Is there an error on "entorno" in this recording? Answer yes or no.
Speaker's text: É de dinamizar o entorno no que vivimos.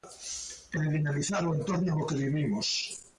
no